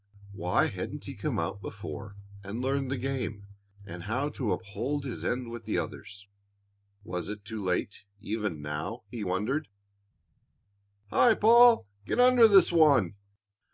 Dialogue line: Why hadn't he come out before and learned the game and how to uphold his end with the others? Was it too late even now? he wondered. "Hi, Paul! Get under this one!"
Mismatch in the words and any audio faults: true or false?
false